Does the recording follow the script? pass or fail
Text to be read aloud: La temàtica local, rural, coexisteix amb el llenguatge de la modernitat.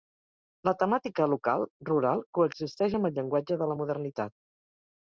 pass